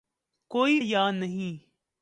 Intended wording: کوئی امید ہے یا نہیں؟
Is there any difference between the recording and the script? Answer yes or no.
yes